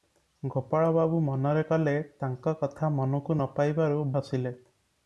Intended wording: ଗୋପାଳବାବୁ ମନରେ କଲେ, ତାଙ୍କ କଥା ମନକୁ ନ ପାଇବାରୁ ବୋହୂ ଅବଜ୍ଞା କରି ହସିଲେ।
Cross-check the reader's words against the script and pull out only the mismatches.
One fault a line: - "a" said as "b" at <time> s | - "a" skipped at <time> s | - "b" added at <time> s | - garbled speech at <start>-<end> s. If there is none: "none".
- "ବୋହୂ ଅବଜ୍ଞା କରି" skipped at 4.0 s